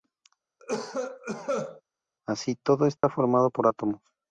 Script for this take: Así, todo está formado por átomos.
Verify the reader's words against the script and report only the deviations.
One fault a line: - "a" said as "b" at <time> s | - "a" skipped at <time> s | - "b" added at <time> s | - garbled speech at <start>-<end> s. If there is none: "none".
none